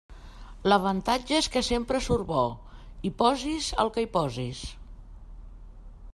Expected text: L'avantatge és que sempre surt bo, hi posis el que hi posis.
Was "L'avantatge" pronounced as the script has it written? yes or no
yes